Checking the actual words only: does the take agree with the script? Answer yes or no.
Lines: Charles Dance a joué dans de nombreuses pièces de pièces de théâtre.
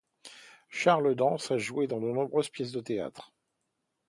no